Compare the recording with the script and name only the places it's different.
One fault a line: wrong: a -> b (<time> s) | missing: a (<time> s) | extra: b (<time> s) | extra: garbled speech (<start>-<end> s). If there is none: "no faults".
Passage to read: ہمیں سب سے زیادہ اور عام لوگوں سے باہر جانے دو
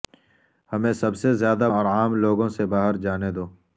no faults